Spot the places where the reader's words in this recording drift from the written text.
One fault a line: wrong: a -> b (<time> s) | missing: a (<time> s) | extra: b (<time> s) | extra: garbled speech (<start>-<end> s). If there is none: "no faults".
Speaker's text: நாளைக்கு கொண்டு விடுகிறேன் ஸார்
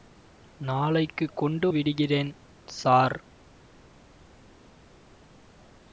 no faults